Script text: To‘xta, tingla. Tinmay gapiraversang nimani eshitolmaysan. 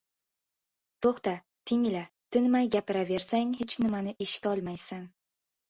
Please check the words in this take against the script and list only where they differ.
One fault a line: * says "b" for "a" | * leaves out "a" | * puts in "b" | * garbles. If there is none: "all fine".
* puts in "hech"